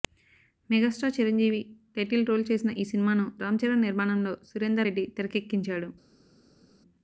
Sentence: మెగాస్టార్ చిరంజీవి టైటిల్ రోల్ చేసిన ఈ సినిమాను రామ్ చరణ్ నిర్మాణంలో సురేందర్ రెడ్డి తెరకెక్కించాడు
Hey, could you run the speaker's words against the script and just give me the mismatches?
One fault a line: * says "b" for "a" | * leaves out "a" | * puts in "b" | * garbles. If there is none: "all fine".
all fine